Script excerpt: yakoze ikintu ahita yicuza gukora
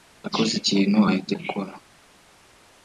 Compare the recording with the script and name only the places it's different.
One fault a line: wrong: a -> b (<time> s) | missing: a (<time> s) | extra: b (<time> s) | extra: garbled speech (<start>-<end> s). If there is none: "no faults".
missing: yicuza (1.3 s)